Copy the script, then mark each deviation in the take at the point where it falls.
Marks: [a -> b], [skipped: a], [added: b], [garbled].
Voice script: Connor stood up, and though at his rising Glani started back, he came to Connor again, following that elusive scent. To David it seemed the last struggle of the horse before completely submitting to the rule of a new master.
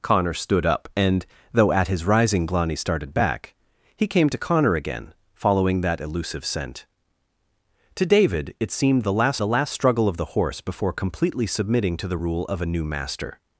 Connor stood up, and though at his rising Glani started back, he came to Connor again, following that elusive scent. To David it seemed the last [added: the last] struggle of the horse before completely submitting to the rule of a new master.